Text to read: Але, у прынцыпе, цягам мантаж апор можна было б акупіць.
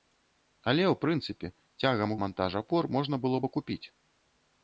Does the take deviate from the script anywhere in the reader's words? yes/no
no